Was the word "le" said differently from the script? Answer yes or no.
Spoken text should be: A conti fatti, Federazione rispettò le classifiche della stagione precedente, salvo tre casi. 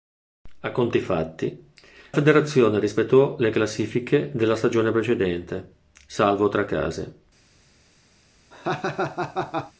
no